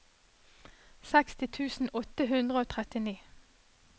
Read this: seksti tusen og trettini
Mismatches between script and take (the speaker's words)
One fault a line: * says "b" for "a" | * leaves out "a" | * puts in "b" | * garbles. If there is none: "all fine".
* puts in "åtte hundre"